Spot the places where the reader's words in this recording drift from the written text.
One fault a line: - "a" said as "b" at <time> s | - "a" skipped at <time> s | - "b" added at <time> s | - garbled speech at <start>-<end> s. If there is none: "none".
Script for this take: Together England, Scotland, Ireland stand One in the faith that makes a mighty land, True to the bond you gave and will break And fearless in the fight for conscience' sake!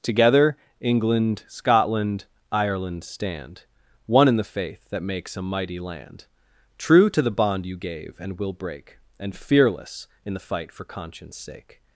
none